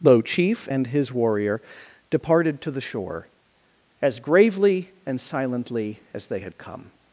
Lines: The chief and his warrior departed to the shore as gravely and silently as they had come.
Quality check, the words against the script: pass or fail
pass